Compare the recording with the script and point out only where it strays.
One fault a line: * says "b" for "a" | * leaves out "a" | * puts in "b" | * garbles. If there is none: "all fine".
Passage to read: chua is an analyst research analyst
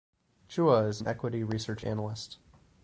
* says "equity" for "analyst"